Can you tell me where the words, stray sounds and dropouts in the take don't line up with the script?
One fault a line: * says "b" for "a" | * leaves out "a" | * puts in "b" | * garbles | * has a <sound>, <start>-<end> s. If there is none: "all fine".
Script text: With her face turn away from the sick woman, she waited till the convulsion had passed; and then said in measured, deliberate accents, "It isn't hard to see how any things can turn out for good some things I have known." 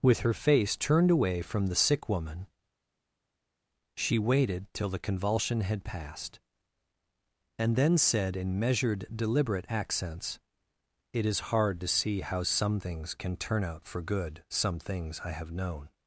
* says "turned" for "turn"
* says "is" for "isn't"
* says "some" for "any"